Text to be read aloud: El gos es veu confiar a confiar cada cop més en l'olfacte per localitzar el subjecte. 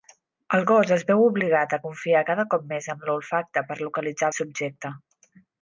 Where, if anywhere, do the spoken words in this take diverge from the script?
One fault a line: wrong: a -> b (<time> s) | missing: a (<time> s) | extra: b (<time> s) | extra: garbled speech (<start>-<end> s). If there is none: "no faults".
wrong: confiar -> obligat (1.2 s)